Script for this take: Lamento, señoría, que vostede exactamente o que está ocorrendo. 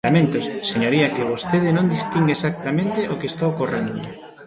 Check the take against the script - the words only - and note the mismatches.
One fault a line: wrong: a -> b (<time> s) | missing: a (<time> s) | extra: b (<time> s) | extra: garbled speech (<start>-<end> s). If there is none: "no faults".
extra: non distinga (1.8 s)